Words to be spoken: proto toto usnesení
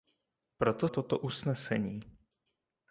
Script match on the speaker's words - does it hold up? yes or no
yes